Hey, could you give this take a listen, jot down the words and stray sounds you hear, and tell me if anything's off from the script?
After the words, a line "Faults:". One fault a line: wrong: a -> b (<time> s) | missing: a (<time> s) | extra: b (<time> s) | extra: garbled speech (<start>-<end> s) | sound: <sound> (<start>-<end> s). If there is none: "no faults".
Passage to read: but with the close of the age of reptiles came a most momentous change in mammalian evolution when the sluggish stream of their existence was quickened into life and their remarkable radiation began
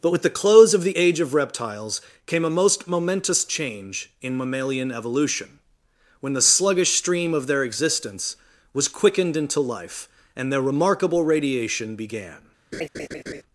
but with the close of the age of reptiles came a most momentous change in mammalian evolution when the sluggish stream of their existence was quickened into life and their remarkable radiation began
Faults:
sound: laugh (12.7-13.4 s)